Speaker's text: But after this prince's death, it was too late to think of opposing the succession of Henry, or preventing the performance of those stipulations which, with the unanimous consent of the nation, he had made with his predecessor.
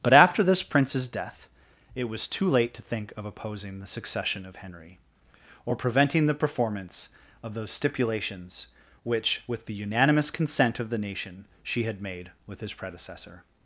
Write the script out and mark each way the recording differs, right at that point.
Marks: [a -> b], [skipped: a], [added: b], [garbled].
But after this prince's death, it was too late to think of opposing the succession of Henry, or preventing the performance of those stipulations which, with the unanimous consent of the nation, [he -> she] had made with his predecessor.